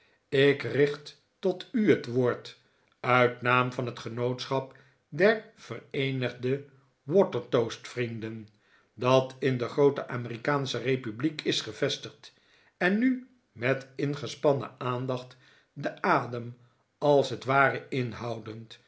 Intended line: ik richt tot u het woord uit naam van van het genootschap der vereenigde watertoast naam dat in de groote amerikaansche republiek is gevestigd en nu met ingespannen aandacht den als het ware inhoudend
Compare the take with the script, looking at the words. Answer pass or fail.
fail